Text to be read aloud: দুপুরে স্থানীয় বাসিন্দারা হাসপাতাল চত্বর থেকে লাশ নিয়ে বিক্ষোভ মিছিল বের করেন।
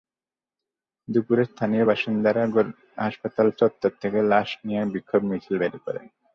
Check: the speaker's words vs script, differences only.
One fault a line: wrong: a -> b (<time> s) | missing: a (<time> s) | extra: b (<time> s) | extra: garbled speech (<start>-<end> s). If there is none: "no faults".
no faults